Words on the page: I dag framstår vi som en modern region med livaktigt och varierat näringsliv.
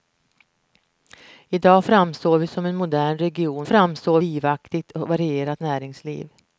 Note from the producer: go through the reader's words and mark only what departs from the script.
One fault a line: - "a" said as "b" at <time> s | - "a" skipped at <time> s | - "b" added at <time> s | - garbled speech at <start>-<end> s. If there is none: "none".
- "med" said as "framstår" at 3.7 s